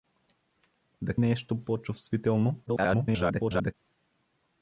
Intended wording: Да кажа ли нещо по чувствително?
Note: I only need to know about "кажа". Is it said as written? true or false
false